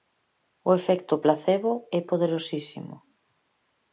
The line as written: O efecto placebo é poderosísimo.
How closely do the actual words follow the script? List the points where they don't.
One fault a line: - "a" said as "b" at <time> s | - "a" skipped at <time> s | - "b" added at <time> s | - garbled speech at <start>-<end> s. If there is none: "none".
none